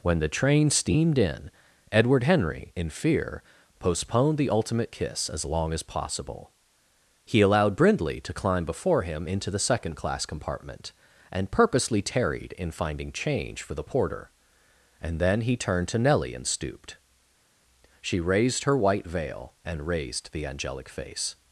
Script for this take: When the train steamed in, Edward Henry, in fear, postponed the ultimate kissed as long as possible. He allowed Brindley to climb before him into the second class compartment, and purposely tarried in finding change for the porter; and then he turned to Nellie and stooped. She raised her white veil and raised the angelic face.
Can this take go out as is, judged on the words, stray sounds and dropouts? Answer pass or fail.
fail